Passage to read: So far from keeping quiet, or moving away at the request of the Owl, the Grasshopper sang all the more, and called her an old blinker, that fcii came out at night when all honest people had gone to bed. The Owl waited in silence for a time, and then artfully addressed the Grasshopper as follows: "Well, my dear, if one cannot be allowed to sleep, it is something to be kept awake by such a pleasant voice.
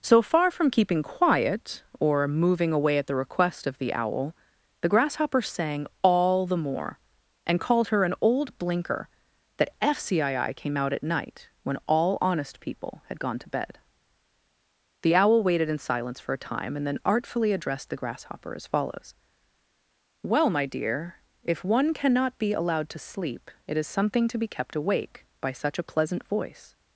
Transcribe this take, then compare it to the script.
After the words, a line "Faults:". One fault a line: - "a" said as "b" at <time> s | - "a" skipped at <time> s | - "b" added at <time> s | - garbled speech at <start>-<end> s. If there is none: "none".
So far from keeping quiet, or moving away at the request of the Owl, the Grasshopper sang all the more, and called her an old blinker, that fcii came out at night when all honest people had gone to bed. The Owl waited in silence for a time, and then artfully addressed the Grasshopper as follows: "Well, my dear, if one cannot be allowed to sleep, it is something to be kept awake by such a pleasant voice.
Faults:
none